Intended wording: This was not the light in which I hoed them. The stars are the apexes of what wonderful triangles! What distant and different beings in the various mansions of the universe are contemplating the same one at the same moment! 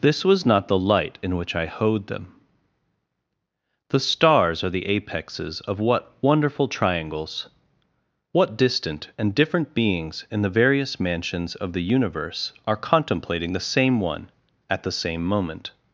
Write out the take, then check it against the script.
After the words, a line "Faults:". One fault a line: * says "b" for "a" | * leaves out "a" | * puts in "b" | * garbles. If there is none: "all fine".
This was not the light in which I hoed them. The stars are the apexes of what wonderful triangles! What distant and different beings in the various mansions of the universe are contemplating the same one at the same moment!
Faults:
all fine